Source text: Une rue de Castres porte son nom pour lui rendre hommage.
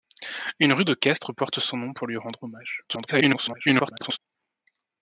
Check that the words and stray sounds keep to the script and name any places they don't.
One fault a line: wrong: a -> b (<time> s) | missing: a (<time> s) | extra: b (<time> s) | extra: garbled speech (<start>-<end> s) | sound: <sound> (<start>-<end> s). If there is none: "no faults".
extra: garbled speech (2.9-4.2 s)